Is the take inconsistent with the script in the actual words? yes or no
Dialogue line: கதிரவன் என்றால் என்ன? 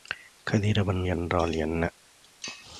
no